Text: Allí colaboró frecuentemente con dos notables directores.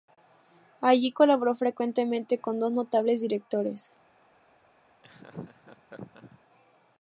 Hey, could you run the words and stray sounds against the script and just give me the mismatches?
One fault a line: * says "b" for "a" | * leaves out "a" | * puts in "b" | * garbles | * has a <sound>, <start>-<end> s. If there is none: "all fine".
* has a laugh, 5.0-6.4 s